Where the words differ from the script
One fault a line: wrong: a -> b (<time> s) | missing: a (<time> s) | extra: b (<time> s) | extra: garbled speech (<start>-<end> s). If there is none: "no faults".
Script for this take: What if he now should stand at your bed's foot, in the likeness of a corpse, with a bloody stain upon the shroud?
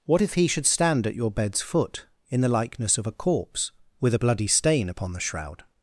missing: now (0.5 s)